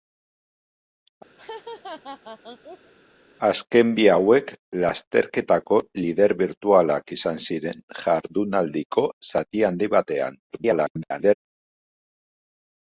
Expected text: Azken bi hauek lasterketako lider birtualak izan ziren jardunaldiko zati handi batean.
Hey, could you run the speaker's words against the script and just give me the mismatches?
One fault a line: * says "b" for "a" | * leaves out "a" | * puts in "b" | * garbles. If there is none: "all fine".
* garbles